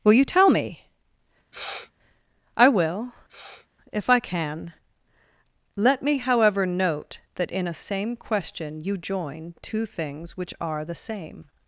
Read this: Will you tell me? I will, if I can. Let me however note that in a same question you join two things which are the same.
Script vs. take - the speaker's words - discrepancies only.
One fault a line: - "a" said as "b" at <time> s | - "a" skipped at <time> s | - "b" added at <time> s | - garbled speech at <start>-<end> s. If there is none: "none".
none